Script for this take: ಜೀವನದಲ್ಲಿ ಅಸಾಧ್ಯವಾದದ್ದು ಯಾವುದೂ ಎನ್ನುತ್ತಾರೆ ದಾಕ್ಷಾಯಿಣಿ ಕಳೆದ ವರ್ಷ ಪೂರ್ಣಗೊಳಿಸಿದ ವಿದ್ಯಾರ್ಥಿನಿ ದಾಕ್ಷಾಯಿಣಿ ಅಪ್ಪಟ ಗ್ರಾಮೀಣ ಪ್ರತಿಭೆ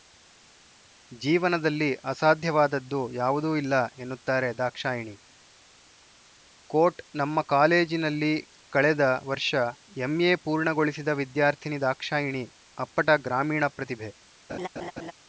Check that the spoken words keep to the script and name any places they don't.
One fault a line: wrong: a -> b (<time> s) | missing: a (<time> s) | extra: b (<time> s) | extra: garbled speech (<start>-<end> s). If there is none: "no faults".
extra: ಇಲ್ಲ (3.5 s)
extra: ಕೋಟ್ ನಮ್ಮ ಕಾಲೇಜಿನಲ್ಲಿ (6.7 s)
extra: ಎಂಎ (10.0 s)